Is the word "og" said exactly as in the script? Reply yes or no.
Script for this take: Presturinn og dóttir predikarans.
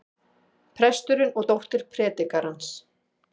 yes